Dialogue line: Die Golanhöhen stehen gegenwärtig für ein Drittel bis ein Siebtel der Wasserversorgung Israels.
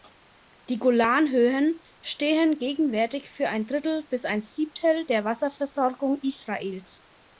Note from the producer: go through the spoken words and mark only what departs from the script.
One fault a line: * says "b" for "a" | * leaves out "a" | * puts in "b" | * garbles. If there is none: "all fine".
all fine